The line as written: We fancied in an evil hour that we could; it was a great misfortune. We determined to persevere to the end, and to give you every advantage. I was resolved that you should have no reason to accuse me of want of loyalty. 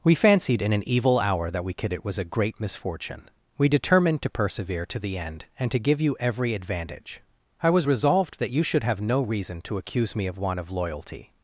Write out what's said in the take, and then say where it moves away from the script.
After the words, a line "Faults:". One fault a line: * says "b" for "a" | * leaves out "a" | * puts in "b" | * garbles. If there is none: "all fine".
We fancied in an evil hour that we could; it was a great misfortune. We determined to persevere to the end, and to give you every advantage. I was resolved that you should have no reason to accuse me of want of loyalty.
Faults:
all fine